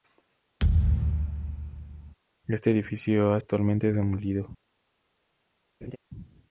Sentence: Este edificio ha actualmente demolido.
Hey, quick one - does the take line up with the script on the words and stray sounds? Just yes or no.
no